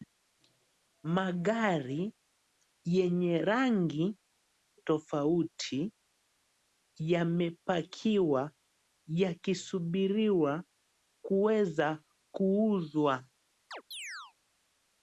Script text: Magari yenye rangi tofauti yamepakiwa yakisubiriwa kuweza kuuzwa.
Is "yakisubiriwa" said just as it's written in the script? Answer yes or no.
yes